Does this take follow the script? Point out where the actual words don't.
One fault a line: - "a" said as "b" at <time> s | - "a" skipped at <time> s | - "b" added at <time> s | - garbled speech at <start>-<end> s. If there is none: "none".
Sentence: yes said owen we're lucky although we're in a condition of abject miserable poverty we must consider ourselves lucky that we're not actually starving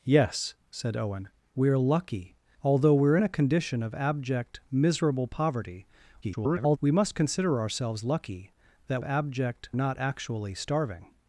- garbled speech at 6.2-6.8 s
- "we're" said as "abject" at 9.0 s